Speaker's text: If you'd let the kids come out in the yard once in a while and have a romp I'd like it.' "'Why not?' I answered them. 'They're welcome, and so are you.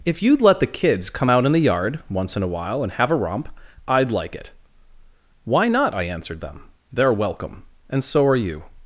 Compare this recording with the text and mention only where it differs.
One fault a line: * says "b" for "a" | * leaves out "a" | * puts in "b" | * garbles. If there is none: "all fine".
all fine